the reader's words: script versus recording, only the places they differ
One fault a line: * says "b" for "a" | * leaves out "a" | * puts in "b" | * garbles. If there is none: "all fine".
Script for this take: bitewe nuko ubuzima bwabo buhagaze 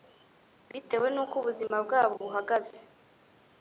all fine